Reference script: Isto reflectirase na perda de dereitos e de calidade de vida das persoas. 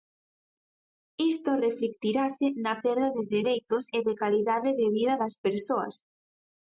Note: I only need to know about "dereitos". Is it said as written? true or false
true